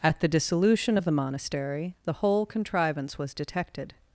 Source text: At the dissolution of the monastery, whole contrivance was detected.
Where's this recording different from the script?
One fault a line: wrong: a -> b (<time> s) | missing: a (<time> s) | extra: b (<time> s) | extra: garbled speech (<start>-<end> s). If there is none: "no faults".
extra: the (2.0 s)